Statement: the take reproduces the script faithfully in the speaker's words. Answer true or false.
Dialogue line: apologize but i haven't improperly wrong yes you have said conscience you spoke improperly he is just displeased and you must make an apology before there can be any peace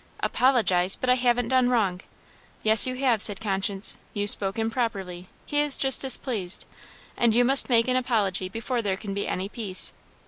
false